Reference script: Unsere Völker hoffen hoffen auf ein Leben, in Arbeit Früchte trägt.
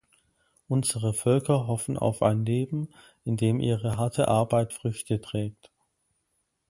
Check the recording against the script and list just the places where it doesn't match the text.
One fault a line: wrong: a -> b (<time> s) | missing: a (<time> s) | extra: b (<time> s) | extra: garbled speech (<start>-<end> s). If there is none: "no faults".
missing: hoffen (1.9 s)
extra: dem ihre harte (3.4 s)